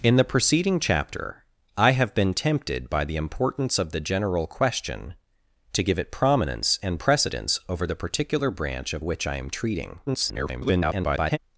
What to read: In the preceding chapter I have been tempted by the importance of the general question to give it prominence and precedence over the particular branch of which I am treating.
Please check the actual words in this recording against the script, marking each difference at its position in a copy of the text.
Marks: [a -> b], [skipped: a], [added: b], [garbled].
In the preceding chapter I have been tempted by the importance of the general question to give it prominence and precedence over the particular branch of which I am treating. [garbled]